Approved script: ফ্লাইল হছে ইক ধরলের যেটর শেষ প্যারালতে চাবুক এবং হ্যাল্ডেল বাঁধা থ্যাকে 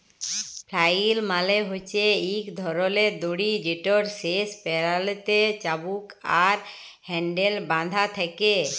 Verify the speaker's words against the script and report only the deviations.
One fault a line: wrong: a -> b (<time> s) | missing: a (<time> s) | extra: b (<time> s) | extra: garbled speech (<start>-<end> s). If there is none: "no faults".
extra: মালে (1.3 s)
extra: দড়ি (3.2 s)
wrong: এবং -> আর (6.4 s)